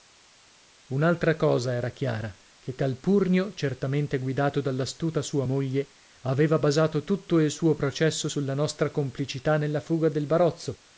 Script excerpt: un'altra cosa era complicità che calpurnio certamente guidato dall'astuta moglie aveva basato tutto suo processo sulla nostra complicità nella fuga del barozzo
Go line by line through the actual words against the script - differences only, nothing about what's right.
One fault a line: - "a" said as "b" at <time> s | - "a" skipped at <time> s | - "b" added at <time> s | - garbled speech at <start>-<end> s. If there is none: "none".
- "complicità" said as "chiara" at 1.9 s
- "sua" added at 5.2 s
- "il" added at 7.4 s